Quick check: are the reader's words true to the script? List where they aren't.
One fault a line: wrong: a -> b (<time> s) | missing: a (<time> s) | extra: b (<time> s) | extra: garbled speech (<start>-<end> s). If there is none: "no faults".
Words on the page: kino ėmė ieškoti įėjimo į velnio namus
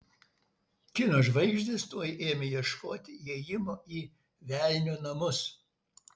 extra: žvaigždės tuoj (1.3 s)